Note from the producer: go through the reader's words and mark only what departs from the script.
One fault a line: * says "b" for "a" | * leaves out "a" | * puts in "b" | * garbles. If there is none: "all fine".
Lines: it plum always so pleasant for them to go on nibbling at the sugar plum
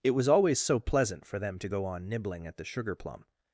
* says "was" for "plum"